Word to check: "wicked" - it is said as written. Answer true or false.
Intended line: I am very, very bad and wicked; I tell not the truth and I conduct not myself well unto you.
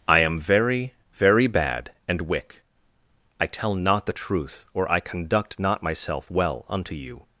false